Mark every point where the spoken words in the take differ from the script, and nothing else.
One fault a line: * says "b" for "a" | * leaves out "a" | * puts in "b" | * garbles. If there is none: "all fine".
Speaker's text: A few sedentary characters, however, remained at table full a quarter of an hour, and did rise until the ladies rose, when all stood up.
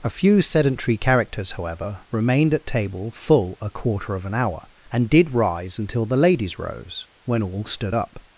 all fine